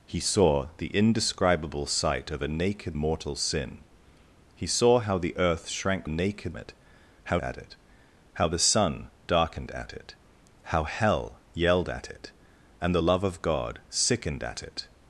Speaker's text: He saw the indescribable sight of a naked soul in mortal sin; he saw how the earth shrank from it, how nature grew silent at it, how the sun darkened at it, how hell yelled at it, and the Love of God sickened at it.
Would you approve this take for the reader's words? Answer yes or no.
no